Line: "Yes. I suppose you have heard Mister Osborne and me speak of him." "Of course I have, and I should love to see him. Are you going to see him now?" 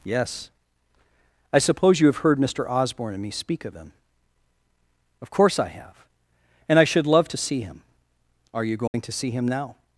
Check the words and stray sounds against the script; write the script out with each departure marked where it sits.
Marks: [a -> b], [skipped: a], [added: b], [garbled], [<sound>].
"Yes. I suppose you have heard Mister Osborne and me speak of him." "Of course I have, and I should love to see him. Are you going [dropout] to see him now?"